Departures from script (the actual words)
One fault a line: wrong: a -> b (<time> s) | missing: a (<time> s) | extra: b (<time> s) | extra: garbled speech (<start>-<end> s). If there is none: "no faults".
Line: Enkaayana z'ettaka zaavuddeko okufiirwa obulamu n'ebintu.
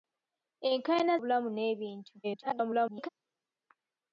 missing: z'ettaka zaavuddeko okufiirwa (1.1 s)
extra: garbled speech (2.2-3.1 s)